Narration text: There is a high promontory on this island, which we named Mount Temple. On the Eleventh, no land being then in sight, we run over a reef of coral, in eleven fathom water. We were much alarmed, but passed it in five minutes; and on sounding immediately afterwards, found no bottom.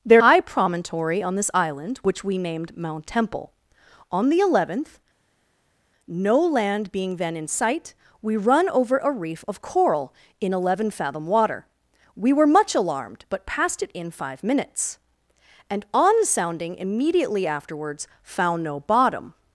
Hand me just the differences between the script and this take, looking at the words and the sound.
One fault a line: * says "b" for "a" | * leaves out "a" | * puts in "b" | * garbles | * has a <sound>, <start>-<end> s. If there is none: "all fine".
* leaves out "is a"